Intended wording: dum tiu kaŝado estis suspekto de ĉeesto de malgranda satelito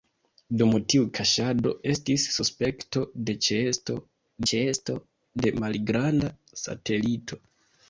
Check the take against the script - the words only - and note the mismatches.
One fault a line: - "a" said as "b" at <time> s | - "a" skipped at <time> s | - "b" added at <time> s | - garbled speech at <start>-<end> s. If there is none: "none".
- "ĉeesto" added at 4.5 s